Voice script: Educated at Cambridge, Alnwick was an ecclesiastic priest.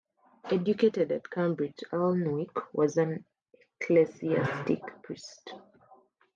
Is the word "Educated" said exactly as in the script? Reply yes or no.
yes